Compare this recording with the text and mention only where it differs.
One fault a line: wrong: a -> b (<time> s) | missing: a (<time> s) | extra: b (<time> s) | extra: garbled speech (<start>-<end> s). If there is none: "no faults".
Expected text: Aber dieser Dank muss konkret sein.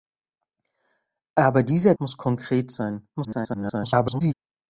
missing: Dank (1.9 s)
extra: garbled speech (3.1-4.3 s)